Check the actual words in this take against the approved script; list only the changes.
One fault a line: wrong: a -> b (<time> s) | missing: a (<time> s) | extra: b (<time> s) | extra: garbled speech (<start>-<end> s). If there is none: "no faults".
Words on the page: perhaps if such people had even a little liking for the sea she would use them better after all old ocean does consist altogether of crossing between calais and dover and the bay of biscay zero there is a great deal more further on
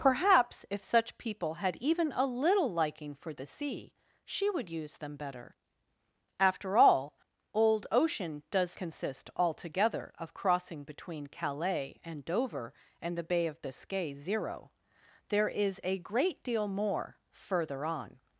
no faults